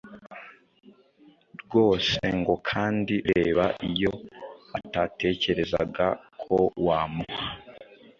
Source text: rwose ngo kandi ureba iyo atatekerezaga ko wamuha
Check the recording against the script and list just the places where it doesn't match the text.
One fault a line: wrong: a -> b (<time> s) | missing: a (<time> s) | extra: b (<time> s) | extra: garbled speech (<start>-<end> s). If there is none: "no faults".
no faults